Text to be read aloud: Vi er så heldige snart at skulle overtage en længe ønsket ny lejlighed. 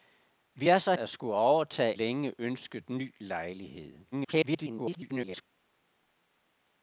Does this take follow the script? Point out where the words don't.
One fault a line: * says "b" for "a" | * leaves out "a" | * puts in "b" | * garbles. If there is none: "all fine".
* leaves out "heldige snart"
* leaves out "en"
* garbles